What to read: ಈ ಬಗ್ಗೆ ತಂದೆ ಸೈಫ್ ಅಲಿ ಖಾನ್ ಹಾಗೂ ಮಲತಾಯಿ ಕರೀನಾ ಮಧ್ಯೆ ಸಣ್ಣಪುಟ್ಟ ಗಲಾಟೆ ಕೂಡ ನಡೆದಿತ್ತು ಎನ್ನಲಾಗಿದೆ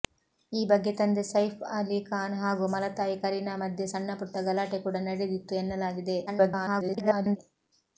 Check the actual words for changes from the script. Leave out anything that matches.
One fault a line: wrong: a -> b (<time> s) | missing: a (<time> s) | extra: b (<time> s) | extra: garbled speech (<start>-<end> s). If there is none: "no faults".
extra: garbled speech (6.3-7.4 s)